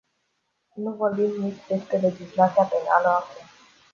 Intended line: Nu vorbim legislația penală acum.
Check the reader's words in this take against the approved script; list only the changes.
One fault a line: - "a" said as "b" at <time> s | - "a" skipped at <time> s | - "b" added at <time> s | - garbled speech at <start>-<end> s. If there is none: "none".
- "nici despre" added at 1.4 s